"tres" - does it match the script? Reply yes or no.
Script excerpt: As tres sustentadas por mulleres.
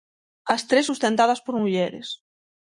yes